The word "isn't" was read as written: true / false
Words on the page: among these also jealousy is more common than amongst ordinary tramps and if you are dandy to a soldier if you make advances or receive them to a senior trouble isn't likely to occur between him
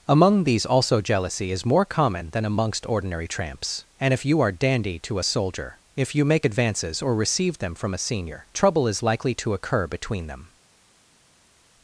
false